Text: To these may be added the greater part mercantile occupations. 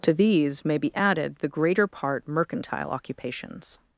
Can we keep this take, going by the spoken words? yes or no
yes